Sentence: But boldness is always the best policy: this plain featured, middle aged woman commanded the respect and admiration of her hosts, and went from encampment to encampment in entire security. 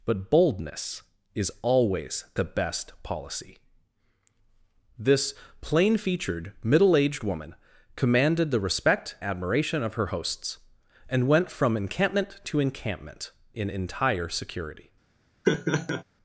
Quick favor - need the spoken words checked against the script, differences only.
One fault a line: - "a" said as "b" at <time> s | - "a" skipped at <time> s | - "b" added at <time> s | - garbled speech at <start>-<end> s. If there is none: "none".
- "and" skipped at 9.2 s